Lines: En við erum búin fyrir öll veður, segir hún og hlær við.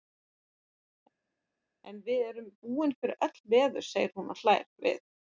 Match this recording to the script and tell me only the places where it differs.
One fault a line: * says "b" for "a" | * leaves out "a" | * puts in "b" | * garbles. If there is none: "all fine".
all fine